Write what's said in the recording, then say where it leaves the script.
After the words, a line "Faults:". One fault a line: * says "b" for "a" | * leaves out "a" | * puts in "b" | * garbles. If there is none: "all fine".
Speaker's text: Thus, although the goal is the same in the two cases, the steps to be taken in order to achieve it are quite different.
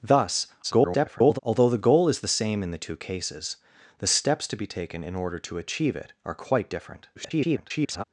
Thus, [garbled] although the goal is the same in the two cases, the steps to be taken in order to achieve it are quite different. [garbled]
Faults:
* garbles
* garbles